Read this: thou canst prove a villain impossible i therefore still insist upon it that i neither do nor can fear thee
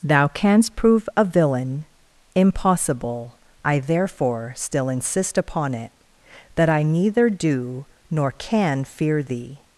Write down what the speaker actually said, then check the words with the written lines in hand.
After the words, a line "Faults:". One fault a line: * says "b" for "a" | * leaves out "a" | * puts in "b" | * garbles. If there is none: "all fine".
thou canst prove a villain impossible i therefore still insist upon it that i neither do nor can fear thee
Faults:
all fine